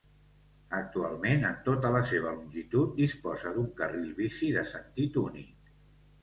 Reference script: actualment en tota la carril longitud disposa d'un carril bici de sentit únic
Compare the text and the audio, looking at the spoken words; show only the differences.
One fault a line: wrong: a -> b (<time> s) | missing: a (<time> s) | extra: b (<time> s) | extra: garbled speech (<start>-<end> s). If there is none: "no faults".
wrong: carril -> seva (2.1 s)